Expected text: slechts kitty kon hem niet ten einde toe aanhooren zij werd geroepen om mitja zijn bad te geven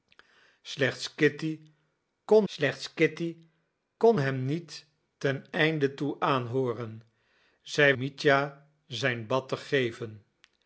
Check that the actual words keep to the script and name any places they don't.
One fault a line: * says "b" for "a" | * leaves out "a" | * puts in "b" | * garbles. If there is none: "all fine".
* puts in "slechts kitty kon"
* leaves out "werd geroepen om"